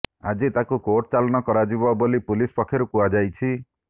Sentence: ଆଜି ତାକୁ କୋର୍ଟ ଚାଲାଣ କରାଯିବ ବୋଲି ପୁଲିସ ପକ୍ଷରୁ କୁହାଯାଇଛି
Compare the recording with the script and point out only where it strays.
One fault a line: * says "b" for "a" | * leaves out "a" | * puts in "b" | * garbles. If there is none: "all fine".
all fine